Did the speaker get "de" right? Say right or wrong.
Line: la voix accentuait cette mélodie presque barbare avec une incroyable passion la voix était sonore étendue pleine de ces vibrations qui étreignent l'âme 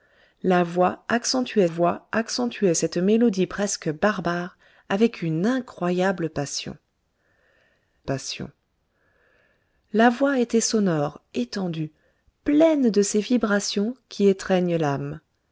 right